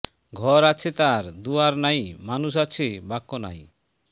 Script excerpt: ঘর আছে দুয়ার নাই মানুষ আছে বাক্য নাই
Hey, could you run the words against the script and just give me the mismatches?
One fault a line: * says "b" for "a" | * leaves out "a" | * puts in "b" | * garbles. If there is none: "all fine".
* puts in "তার"